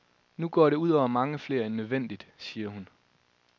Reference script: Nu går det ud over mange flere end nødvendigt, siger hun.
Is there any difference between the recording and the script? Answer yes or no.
no